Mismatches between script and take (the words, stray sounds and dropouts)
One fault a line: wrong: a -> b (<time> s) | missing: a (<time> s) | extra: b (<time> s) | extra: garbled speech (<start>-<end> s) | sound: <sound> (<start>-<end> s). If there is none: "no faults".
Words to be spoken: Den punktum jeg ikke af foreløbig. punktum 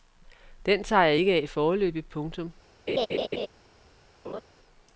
wrong: punktum -> tager (0.8 s)
sound: laugh (2.9-3.5 s)
sound: laugh (4.2-4.4 s)